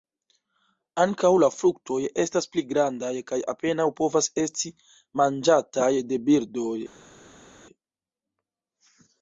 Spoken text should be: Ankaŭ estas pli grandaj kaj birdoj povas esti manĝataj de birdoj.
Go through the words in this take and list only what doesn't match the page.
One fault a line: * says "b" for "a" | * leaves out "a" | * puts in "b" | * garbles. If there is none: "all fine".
* puts in "la fruktoj"
* says "apenaŭ" for "birdoj"